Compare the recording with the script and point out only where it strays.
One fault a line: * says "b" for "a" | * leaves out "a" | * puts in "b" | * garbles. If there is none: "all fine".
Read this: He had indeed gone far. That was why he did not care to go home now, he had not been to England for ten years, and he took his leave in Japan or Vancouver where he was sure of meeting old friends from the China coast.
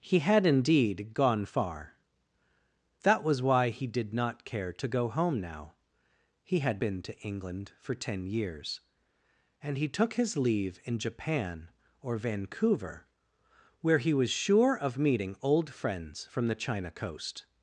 * leaves out "not"